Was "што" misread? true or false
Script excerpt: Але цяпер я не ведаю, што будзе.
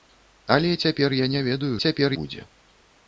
true